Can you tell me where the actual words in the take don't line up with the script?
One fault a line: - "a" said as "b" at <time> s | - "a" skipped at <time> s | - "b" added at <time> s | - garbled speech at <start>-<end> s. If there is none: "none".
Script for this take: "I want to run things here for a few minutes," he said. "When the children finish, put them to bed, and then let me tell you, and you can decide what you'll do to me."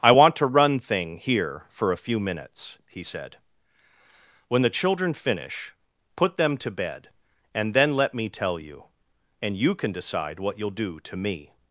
- "things" said as "thing" at 0.8 s